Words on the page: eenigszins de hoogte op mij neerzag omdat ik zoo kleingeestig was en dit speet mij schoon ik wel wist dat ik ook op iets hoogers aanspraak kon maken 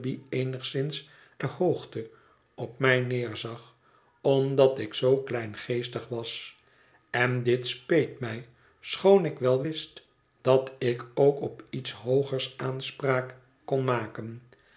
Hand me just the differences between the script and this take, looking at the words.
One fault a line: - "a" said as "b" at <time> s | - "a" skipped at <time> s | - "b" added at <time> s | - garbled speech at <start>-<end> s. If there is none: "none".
none